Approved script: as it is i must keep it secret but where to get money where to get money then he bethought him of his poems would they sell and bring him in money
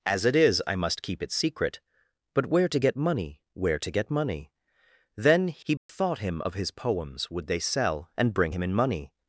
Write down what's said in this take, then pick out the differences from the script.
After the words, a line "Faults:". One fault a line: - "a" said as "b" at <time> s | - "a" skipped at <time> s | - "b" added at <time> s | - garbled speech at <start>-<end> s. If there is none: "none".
as it is i must keep it secret but where to get money where to get money then he bethought him of his poems would they sell and bring him in money
Faults:
none